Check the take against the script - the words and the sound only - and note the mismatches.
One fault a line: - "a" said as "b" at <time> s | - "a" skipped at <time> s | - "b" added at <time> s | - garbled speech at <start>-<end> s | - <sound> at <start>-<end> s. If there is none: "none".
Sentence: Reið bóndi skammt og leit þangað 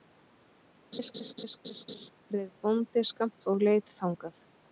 - laugh at 0.9-2.1 s